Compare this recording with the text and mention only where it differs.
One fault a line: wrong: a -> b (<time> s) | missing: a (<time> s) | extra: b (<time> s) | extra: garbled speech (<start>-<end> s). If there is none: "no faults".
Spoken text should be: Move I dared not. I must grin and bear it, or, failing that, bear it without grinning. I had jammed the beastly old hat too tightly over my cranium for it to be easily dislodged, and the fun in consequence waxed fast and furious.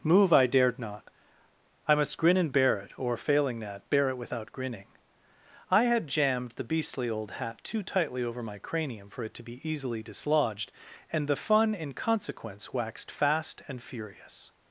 no faults